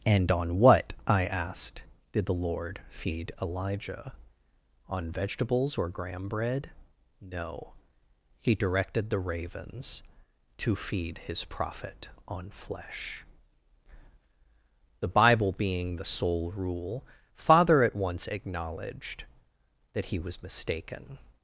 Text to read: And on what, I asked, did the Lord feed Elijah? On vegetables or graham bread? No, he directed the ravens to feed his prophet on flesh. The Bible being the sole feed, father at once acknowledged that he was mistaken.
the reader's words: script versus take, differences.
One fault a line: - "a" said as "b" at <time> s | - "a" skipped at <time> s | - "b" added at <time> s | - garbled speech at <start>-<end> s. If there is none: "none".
- "feed" said as "rule" at 16.6 s